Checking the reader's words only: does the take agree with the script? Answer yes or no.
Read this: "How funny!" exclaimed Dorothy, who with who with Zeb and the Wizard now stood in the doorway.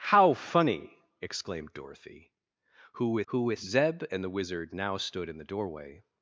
yes